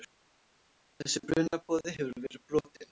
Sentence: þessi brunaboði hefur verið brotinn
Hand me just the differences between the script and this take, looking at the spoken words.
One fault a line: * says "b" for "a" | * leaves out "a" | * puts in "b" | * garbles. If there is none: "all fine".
all fine